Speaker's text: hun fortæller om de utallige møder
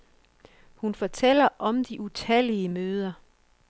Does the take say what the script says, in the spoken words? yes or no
yes